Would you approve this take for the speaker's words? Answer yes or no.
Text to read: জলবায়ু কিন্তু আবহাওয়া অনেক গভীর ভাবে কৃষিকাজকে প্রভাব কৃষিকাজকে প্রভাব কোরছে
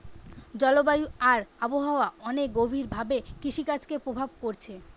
no